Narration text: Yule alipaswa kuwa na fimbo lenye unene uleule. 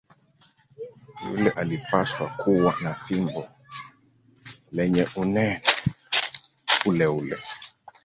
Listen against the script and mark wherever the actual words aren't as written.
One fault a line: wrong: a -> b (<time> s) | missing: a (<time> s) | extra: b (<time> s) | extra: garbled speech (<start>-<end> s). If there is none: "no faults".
no faults